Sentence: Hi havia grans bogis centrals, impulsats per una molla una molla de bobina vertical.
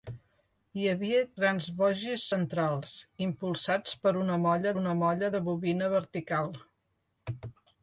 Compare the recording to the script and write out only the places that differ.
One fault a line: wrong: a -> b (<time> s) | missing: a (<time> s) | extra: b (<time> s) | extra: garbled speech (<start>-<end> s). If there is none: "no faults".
no faults